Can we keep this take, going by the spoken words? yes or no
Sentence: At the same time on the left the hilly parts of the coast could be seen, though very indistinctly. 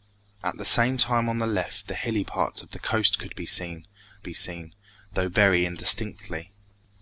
no